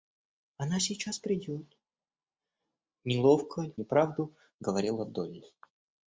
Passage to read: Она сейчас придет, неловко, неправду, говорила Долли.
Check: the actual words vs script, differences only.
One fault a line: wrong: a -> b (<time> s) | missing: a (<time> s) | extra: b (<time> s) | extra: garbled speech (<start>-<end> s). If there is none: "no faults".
no faults